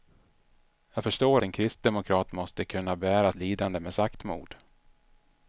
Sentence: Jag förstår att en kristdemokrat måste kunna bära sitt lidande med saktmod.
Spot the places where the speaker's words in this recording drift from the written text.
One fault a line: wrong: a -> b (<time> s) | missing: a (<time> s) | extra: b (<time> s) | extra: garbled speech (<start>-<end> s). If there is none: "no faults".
missing: att (1.4 s)
missing: sitt (3.3 s)